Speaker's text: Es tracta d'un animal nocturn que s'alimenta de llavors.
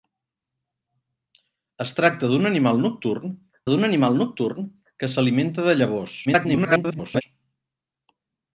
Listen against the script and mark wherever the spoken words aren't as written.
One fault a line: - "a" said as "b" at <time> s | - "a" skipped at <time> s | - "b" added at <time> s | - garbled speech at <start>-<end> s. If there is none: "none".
- "d'un animal nocturn" added at 3.7 s
- garbled speech at 6.3-7.2 s